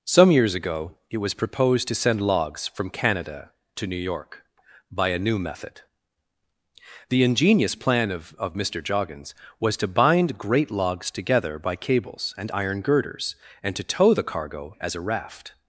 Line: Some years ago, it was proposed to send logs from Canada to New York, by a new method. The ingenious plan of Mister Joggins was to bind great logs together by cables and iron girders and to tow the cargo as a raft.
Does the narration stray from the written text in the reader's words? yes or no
yes